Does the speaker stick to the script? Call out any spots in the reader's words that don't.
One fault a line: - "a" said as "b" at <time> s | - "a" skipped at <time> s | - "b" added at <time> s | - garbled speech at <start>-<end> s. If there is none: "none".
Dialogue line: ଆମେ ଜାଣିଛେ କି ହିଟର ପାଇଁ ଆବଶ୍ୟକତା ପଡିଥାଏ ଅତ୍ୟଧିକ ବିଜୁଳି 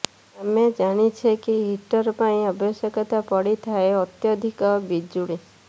none